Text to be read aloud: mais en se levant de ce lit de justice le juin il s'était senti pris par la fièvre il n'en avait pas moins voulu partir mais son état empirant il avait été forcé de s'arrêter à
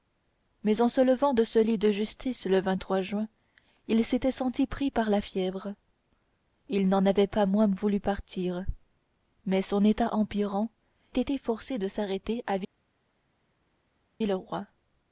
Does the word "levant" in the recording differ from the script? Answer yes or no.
no